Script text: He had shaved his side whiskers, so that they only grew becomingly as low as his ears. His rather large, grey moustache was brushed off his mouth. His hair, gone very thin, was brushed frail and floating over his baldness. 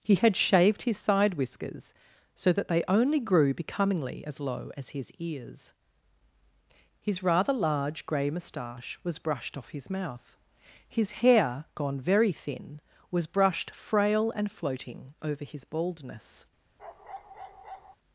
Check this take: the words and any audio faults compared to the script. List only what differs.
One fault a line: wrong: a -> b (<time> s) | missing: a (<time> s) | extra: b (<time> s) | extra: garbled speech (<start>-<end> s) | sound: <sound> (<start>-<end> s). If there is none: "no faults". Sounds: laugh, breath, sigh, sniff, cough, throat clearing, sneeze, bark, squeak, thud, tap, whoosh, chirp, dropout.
sound: bark (16.8-18.0 s)